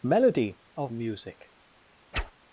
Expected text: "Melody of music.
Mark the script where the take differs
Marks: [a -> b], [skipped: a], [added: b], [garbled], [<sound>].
"Melody of music. [whoosh]